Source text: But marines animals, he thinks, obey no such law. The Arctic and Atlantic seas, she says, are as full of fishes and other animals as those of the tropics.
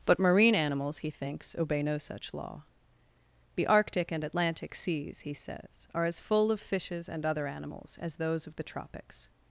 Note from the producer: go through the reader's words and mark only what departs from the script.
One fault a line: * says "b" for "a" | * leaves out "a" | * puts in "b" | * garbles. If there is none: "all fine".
* says "marine" for "marines"
* says "he" for "she"